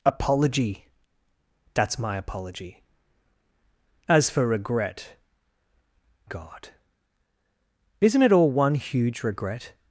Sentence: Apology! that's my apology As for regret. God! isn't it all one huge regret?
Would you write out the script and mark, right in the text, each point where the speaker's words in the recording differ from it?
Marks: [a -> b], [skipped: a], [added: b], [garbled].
Apology! that's my apology As for regret. God! isn't it all one huge regret?